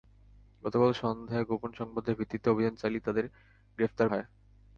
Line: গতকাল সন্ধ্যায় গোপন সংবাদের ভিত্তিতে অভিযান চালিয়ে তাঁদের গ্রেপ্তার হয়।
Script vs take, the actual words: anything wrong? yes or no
no